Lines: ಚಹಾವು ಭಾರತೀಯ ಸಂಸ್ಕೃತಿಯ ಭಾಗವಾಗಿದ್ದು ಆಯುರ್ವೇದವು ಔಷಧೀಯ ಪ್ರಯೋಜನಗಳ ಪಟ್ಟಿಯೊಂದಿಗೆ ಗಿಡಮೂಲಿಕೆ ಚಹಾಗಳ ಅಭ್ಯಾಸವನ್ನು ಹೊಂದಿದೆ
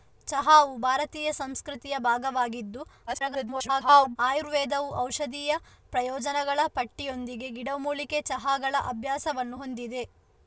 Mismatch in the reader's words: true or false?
true